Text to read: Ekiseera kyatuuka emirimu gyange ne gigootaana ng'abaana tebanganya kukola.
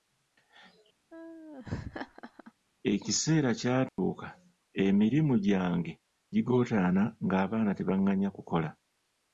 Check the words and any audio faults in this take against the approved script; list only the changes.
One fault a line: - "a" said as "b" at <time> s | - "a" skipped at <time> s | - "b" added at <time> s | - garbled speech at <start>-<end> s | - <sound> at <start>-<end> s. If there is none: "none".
- laugh at 1.1-2.5 s
- dropout at 3.9-4.0 s
- "ne" skipped at 5.9 s